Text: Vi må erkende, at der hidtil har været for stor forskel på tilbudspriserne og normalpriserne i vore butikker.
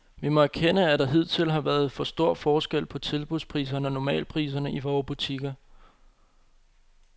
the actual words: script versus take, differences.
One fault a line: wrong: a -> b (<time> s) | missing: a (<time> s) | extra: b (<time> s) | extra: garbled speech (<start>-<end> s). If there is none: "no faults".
no faults